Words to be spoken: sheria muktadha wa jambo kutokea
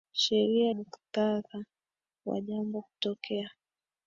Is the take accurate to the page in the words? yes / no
yes